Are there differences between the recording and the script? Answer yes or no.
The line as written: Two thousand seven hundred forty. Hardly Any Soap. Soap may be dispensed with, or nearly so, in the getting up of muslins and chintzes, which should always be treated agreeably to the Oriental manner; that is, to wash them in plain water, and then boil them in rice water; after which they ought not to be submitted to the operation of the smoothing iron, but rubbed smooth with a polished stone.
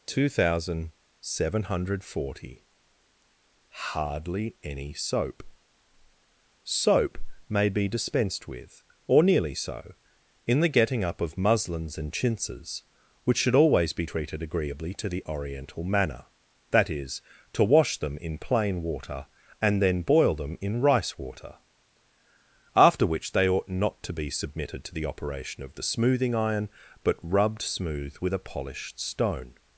no